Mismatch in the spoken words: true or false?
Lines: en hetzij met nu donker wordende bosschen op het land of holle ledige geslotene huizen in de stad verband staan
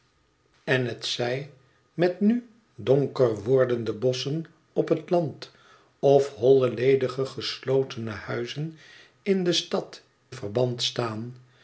false